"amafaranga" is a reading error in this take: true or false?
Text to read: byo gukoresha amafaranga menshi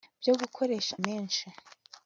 true